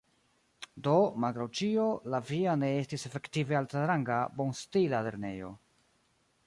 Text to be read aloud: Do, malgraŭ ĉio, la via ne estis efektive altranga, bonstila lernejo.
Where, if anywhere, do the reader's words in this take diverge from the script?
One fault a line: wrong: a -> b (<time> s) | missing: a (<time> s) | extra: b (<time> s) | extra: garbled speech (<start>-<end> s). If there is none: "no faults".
no faults